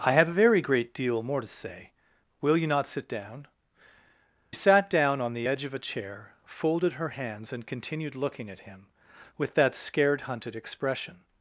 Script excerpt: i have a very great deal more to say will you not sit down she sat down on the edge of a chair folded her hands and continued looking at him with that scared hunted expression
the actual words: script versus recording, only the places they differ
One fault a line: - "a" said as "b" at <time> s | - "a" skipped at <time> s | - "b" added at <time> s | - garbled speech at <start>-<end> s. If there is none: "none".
- "she" skipped at 3.5 s